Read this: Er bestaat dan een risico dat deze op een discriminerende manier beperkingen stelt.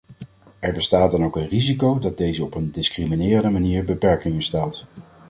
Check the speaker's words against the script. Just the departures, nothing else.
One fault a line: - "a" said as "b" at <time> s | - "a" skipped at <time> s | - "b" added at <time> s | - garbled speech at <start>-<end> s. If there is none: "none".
- "ook" added at 1.2 s